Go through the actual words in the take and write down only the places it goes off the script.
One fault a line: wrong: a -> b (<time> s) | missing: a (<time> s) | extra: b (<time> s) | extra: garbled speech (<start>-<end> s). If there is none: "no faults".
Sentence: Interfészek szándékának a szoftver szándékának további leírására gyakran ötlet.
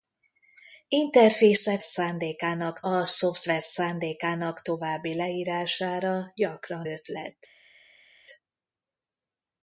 no faults